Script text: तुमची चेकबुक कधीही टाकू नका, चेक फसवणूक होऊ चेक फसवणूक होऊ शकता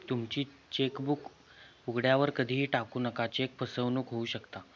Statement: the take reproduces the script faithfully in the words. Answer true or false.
false